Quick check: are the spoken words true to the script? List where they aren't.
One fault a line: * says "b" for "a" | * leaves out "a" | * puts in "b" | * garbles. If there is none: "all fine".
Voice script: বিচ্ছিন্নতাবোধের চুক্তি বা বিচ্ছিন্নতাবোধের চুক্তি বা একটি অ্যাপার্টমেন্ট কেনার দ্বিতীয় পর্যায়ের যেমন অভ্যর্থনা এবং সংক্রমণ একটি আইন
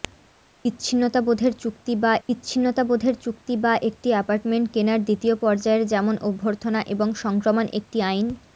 all fine